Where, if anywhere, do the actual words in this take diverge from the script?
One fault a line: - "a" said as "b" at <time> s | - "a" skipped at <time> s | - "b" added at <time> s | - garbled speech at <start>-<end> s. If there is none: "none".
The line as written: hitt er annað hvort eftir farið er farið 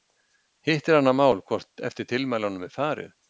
- "mál" added at 1.2 s
- "farið" said as "tilmælunum" at 2.1 s